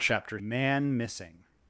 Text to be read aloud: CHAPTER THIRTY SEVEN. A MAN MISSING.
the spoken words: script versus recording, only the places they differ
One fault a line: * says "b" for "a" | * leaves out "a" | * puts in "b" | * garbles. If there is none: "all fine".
* leaves out "THIRTY SEVEN A"